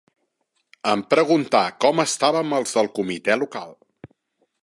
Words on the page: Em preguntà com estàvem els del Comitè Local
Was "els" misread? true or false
false